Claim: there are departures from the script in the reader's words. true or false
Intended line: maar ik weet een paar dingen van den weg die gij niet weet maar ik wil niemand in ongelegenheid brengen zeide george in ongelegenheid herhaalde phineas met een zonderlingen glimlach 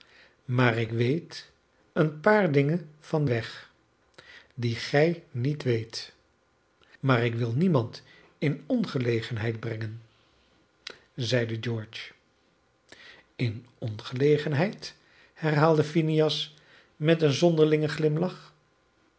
true